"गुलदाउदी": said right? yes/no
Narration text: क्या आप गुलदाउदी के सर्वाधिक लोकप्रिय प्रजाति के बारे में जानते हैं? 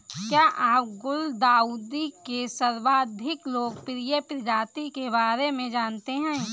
yes